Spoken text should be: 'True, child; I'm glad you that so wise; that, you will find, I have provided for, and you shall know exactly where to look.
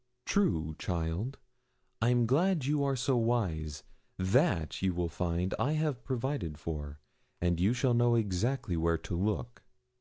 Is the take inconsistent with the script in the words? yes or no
yes